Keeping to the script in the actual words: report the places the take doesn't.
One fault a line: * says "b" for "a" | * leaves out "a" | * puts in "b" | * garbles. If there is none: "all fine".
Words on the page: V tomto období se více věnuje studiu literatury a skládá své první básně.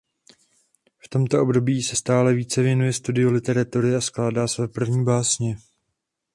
* puts in "stále"